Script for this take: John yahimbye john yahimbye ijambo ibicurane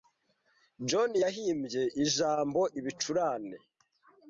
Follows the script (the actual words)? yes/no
no